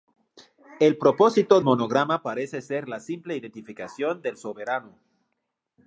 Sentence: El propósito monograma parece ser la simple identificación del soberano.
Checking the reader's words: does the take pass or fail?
pass